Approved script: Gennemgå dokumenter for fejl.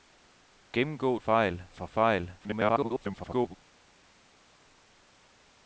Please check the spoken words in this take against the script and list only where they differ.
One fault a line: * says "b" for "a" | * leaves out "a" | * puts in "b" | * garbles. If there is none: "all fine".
* says "fejl" for "dokumenter"
* garbles